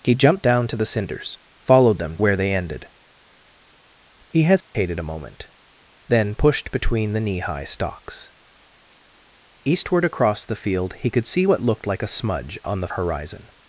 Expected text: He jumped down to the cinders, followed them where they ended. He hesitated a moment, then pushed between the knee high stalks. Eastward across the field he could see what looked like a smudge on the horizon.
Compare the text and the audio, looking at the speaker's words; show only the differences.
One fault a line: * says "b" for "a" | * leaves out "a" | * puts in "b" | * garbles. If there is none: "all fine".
all fine